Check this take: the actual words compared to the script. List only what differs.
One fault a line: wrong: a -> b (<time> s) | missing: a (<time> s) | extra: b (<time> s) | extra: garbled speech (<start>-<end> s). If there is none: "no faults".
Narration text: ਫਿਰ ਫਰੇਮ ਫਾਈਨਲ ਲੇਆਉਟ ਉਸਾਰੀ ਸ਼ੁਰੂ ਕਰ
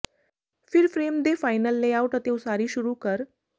extra: ਦੇ (1.2 s)
extra: ਅਤੇ (2.2 s)